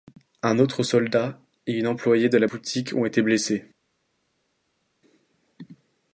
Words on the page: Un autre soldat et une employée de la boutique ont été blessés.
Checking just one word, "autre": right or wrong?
right